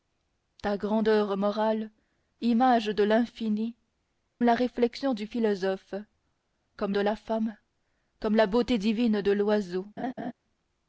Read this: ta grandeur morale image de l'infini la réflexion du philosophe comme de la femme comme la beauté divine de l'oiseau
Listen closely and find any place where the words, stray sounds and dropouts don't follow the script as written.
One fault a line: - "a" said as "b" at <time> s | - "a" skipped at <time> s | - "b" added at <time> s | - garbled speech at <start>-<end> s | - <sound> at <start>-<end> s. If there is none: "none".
- laugh at 10.0-10.3 s